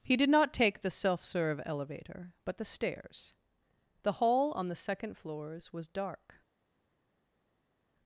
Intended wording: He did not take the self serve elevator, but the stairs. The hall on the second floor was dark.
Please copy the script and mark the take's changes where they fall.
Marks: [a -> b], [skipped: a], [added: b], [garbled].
He did not take the self serve elevator, but the stairs. The hall on the second [floor -> floors] was dark.